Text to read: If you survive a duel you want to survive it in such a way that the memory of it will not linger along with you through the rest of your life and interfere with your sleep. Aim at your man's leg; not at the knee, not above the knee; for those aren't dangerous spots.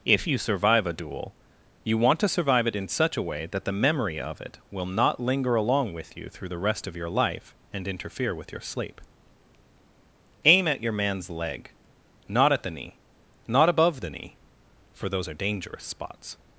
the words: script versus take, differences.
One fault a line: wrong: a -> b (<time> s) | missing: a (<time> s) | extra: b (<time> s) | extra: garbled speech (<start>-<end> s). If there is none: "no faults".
wrong: aren't -> are (15.3 s)